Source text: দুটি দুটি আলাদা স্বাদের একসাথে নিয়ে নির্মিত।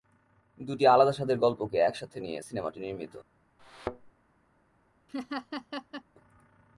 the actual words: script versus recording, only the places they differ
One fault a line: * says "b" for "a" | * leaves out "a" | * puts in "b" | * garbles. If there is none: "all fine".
* leaves out "দুটি"
* puts in "গল্পকে"
* puts in "সিনেমাটি"